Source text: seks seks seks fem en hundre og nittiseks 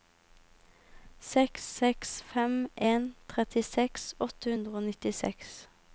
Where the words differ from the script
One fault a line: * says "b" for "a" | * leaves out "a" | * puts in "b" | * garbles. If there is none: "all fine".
* leaves out "seks"
* puts in "trettiseks åtte"